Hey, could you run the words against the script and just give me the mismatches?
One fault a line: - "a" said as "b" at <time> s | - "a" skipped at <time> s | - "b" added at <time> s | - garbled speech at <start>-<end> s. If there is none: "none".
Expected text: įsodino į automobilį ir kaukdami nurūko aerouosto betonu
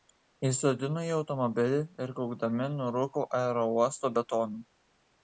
none